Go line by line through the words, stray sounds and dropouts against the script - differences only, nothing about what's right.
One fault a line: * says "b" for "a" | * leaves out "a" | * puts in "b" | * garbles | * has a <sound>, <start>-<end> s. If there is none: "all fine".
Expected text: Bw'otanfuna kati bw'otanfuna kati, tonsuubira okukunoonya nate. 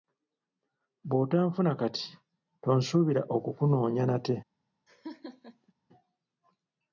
* leaves out "bw'otanfuna kati"
* has a laugh, 4.9-5.7 s